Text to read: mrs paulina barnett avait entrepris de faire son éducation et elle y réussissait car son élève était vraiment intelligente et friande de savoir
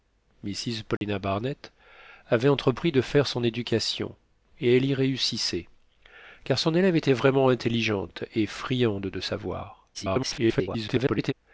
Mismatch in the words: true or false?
true